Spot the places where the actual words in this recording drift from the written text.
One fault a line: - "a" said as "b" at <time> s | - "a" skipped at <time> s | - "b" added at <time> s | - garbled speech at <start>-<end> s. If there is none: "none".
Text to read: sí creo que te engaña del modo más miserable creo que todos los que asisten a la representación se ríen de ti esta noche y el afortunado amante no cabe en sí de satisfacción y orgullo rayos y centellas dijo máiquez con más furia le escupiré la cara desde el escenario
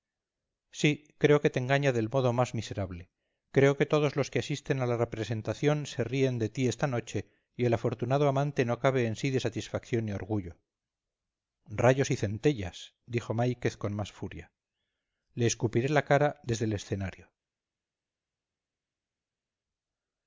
none